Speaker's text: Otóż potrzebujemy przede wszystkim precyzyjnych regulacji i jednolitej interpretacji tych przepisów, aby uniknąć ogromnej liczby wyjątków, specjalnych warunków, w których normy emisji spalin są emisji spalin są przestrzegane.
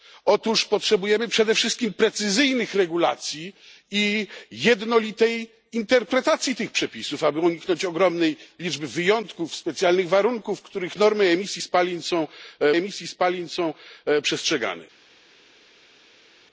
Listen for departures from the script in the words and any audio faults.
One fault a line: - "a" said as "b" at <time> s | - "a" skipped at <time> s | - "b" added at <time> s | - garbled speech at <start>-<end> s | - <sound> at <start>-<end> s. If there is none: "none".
none